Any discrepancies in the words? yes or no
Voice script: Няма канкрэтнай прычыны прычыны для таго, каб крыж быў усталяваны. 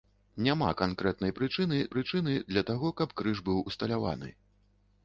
no